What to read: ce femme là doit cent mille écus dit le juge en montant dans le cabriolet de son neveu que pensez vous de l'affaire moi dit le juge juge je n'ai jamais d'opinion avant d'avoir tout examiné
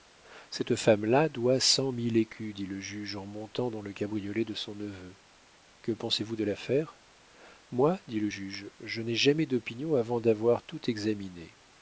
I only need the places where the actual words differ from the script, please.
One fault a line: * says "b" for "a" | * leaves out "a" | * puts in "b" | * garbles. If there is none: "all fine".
* says "cette" for "ce"
* leaves out "juge"